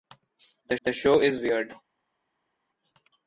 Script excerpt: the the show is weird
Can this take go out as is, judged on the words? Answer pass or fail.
pass